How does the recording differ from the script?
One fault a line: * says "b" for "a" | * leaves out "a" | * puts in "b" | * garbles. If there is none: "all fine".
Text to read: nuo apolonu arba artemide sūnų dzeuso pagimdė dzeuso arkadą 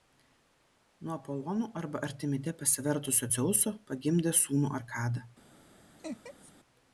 * says "pasivertusio" for "sūnų"
* says "sūnų" for "dzeuso"